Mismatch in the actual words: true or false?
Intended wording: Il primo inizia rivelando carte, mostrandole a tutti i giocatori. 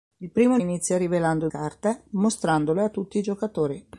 false